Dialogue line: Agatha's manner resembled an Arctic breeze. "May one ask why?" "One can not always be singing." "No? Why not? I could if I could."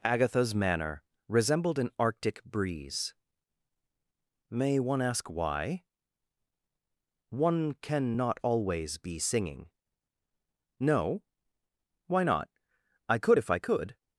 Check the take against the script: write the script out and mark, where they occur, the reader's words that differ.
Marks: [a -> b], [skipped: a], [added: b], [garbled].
Agatha's manner resembled an Arctic breeze. "May one ask why?" "One can not always be singing." "No? Why not? I could if I could."